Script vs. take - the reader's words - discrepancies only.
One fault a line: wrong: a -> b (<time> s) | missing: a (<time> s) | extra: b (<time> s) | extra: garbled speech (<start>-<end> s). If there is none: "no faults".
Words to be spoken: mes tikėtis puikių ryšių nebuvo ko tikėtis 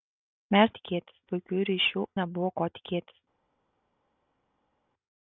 no faults